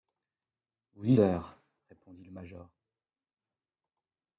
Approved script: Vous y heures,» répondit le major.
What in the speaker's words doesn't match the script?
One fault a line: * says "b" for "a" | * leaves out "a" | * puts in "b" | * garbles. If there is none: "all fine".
all fine